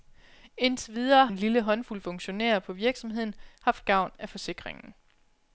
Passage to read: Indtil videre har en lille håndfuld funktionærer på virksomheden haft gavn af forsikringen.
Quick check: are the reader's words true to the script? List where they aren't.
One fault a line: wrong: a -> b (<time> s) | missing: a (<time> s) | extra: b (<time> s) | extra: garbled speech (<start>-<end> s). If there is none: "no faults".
missing: har (1.3 s)